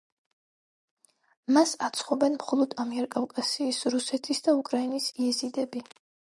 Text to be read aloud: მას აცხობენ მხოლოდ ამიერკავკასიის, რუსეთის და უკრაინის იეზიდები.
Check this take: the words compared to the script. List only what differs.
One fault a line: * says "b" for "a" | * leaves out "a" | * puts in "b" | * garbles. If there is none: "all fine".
all fine